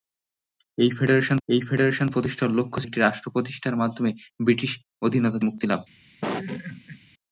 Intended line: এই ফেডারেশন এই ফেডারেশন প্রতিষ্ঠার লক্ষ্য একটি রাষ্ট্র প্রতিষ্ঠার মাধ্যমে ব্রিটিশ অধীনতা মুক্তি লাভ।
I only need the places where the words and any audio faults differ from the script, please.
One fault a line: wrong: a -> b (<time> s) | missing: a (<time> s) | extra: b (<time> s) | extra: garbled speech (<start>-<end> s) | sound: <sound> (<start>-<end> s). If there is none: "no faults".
sound: laugh (6.2-7.0 s)